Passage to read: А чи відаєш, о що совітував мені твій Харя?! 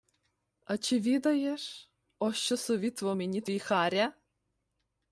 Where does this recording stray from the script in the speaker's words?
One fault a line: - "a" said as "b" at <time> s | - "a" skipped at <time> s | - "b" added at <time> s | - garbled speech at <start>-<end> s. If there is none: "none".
none